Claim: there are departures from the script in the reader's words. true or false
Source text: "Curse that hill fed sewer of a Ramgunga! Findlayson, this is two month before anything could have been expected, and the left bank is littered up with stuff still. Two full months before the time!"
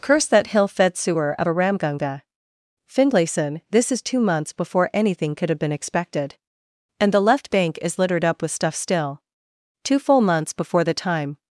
true